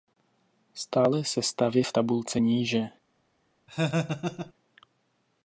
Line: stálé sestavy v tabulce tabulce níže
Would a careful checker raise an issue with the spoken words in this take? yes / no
yes